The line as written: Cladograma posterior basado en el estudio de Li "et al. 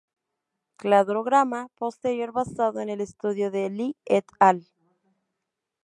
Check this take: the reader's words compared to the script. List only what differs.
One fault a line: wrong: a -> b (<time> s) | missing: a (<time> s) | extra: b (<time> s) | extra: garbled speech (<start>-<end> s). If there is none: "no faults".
no faults